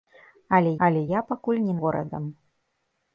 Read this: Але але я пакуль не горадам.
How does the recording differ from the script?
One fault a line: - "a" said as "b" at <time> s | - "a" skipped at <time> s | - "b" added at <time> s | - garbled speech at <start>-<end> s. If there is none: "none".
none